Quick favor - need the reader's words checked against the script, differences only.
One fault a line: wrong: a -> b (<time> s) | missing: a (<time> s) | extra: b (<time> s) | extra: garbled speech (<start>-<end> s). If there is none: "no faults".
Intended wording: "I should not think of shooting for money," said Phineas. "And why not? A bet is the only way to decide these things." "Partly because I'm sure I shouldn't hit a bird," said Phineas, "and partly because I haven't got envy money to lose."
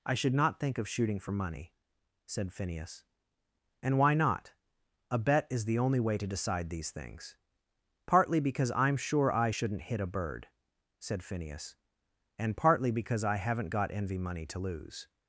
no faults